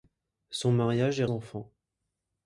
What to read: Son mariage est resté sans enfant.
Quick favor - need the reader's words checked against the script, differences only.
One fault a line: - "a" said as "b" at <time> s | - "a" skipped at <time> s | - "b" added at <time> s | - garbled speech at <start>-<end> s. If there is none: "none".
- "resté sans" skipped at 1.2 s